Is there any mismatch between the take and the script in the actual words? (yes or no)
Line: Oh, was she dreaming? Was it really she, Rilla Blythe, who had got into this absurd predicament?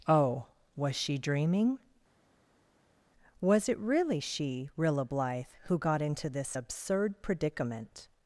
yes